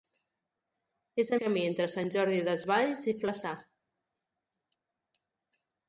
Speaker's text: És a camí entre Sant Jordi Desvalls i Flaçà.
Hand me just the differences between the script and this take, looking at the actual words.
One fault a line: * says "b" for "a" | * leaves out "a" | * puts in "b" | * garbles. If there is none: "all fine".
all fine